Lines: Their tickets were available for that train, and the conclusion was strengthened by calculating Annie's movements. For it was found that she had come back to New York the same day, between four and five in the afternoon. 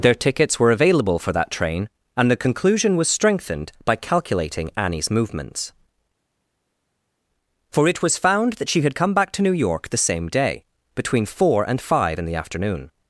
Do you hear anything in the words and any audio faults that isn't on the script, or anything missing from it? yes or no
no